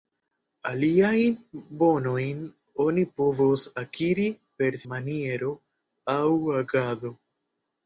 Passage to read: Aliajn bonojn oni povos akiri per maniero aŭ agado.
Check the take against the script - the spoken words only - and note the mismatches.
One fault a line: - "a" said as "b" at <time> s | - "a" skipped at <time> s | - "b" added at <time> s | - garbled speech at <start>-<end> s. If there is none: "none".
none